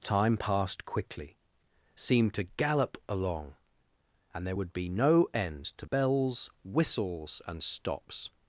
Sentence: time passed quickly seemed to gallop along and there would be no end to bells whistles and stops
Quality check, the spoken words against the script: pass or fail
pass